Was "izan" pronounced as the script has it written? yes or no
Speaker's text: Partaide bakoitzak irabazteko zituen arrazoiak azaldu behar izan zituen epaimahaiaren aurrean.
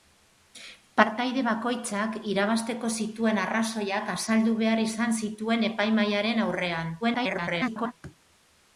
yes